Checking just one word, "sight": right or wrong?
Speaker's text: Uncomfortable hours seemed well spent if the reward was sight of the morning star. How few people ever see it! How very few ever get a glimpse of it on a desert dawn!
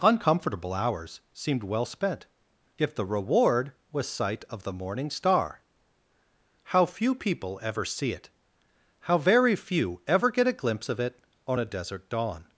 right